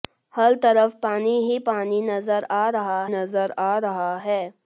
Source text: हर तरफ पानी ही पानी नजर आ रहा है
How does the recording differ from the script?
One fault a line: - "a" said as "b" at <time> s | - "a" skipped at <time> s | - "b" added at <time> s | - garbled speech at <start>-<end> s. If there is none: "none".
- "नजर आ रहा" added at 3.1 s